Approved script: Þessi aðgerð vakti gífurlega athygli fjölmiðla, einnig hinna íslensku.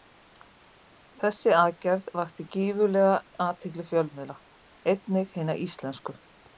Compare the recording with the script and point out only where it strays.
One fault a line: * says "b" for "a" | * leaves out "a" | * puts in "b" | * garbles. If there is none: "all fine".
all fine